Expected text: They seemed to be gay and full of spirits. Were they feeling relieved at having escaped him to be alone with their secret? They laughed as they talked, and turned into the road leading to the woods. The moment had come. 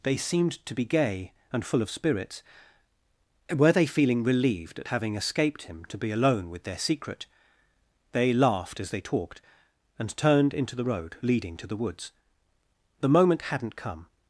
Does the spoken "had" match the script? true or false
false